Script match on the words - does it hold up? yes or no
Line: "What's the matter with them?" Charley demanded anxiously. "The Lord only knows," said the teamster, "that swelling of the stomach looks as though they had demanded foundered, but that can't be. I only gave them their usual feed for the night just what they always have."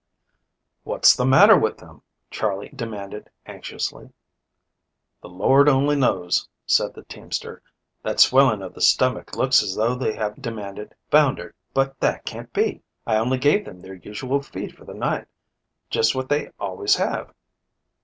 yes